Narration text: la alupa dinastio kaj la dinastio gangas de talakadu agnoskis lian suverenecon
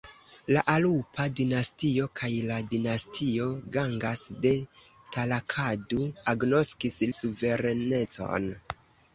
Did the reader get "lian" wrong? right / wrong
wrong